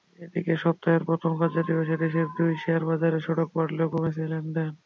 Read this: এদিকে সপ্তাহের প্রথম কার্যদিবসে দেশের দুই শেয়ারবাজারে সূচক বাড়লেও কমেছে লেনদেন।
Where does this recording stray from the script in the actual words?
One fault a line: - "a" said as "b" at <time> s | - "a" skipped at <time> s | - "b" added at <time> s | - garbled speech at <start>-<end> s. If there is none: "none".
none